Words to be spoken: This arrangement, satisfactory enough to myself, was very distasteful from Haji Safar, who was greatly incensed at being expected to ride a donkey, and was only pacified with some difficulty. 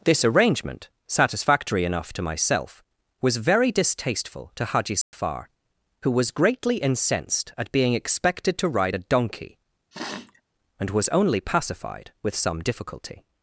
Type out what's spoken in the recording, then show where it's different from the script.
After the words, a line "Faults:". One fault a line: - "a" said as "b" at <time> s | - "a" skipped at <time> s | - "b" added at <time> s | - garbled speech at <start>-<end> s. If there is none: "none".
This arrangement, satisfactory enough to myself, was very distasteful to Haji Safar, who was greatly incensed at being expected to ride a donkey, and was only pacified with some difficulty.
Faults:
- "from" said as "to" at 4.5 s